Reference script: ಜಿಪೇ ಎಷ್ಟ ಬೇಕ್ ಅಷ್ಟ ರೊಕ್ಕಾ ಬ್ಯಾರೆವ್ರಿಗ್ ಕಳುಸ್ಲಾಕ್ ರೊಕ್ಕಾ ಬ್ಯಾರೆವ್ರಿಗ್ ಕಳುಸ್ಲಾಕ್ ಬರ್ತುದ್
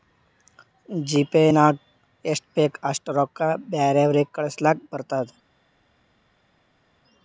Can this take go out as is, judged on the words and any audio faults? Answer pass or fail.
fail